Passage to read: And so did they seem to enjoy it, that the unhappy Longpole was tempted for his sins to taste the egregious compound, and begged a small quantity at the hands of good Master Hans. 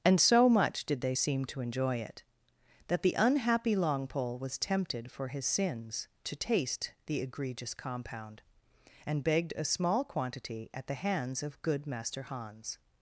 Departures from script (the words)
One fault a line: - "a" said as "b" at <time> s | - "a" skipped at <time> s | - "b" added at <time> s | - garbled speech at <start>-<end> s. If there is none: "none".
- "much" added at 0.5 s